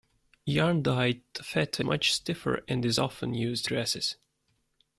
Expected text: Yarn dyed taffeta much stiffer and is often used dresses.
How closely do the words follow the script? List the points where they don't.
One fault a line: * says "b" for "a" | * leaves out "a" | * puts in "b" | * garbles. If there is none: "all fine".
all fine